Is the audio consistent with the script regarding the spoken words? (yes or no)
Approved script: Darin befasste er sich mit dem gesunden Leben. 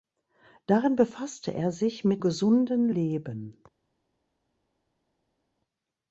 no